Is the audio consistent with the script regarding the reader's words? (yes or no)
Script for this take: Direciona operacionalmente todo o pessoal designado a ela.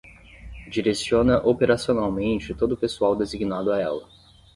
yes